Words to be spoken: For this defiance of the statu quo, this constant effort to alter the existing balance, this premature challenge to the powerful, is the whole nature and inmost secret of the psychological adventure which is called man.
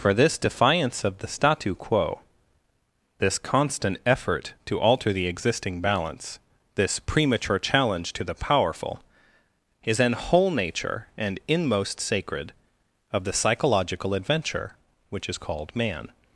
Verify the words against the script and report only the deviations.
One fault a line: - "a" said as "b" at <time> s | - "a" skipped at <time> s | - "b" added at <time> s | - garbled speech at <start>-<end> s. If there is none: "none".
- "the" said as "an" at 10.0 s
- "secret" said as "sacred" at 12.0 s